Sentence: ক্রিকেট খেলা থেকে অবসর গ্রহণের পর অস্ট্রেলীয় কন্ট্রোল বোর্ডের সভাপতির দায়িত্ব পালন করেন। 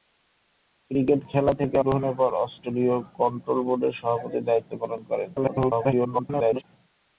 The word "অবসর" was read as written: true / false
false